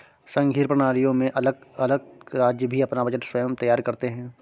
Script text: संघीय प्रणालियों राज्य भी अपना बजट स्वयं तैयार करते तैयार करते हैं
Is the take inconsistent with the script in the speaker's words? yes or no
yes